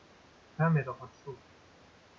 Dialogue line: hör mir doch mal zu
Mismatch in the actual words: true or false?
false